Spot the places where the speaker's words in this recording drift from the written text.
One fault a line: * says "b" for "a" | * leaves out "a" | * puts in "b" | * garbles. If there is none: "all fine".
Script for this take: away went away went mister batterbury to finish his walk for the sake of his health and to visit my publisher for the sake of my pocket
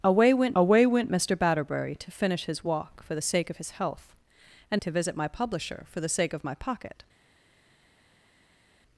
all fine